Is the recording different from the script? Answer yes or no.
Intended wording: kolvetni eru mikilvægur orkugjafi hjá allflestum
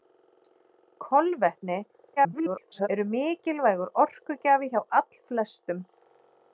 yes